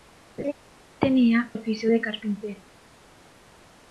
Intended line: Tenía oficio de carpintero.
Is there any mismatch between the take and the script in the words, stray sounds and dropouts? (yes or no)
yes